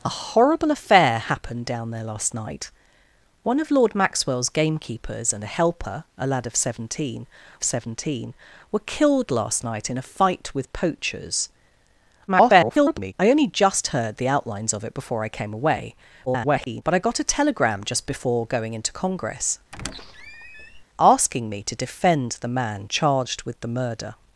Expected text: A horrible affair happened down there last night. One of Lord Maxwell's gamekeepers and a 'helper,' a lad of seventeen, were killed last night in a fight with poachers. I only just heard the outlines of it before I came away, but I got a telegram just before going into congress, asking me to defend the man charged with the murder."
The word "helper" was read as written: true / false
true